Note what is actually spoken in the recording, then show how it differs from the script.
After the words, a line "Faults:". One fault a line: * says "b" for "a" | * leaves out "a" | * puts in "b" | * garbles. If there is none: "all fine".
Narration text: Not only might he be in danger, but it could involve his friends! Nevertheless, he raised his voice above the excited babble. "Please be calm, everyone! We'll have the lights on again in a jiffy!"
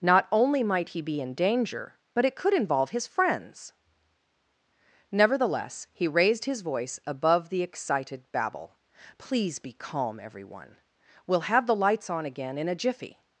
Not only might he be in danger, but it could involve his friends! Nevertheless, he raised his voice above the excited babble. "Please be calm, everyone! We'll have the lights on again in a jiffy!"
Faults:
all fine